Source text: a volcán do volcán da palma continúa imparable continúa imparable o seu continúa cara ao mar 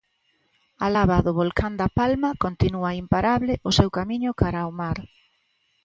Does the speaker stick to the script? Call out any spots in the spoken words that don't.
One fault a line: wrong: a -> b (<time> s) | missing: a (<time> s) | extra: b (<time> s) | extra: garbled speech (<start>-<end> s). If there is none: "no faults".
wrong: volcán -> lava (0.9 s)
missing: continúa imparable (3.5 s)
wrong: continúa -> camiño (4.0 s)